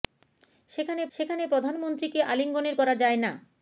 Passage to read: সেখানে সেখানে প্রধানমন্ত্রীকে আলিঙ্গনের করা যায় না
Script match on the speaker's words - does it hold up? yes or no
yes